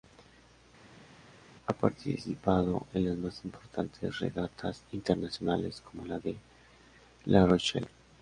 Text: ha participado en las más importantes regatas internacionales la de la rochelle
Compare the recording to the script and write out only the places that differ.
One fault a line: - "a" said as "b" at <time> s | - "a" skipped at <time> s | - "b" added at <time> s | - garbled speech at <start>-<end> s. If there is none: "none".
- "como" added at 5.8 s